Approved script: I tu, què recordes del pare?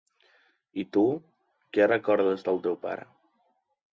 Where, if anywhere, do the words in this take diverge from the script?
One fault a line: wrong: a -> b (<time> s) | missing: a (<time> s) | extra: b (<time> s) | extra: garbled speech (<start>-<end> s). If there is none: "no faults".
extra: teu (2.7 s)